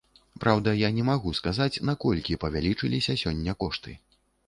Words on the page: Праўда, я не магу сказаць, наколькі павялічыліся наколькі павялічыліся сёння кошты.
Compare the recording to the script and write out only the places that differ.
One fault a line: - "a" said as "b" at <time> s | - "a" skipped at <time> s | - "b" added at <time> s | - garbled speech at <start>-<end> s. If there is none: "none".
- "наколькі павялічыліся" skipped at 3.2 s